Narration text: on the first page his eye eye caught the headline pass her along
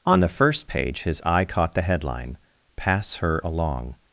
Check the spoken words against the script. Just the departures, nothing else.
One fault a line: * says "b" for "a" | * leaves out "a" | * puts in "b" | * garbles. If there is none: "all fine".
* leaves out "eye"